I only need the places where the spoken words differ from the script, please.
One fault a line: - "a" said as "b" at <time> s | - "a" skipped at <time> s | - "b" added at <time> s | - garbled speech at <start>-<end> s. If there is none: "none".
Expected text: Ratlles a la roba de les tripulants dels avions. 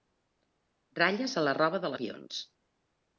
- "les tripulants dels" skipped at 1.9 s